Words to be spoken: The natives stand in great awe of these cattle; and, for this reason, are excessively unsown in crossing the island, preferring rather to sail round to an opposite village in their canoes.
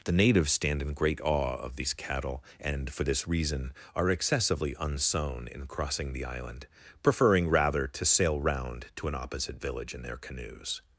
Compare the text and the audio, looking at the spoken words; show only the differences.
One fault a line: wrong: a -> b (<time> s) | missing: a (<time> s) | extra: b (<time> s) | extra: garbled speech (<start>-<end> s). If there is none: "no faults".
no faults